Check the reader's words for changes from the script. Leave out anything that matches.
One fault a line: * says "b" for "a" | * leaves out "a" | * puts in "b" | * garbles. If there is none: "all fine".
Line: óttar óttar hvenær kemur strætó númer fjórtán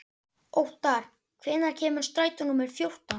* leaves out "óttar"